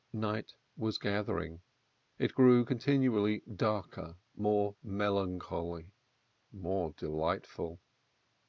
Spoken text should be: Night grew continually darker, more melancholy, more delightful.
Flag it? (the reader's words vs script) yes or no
yes